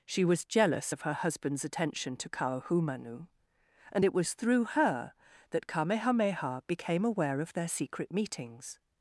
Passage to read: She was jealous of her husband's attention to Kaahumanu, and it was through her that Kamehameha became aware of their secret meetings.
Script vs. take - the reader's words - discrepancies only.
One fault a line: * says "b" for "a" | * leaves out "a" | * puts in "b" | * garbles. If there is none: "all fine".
all fine